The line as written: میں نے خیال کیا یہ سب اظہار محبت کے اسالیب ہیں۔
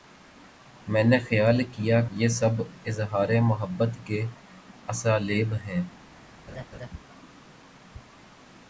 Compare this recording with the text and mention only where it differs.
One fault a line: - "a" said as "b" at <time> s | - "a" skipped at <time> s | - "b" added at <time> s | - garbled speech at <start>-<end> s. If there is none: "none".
none